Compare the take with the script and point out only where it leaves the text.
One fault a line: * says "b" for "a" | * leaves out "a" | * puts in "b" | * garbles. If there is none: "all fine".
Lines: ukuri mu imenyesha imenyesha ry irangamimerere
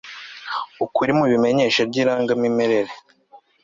* leaves out "imenyesha"